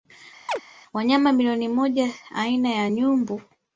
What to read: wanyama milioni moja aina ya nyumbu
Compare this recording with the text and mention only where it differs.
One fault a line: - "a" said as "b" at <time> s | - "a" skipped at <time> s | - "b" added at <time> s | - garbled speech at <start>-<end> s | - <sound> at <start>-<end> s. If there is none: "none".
- chirp at 0.5-0.6 s